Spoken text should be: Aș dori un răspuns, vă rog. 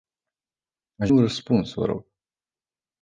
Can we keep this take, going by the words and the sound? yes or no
no